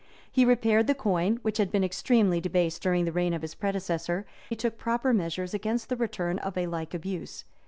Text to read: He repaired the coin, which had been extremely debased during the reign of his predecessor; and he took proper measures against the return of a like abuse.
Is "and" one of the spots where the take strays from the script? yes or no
yes